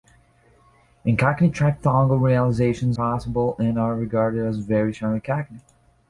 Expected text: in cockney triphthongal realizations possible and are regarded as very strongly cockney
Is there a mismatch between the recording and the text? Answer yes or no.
no